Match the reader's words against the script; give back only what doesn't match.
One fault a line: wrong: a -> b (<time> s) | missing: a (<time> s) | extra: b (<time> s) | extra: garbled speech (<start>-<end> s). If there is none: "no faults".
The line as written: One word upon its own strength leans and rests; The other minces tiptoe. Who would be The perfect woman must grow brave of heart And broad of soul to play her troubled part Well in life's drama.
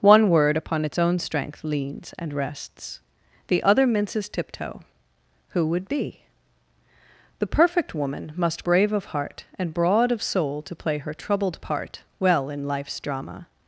missing: grow (8.7 s)